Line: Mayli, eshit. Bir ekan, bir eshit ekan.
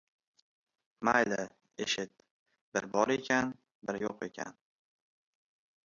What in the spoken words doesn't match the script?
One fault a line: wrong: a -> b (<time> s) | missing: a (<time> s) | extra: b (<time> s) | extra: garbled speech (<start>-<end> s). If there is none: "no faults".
extra: bor (3.0 s)
wrong: eshit -> yo‘q (4.0 s)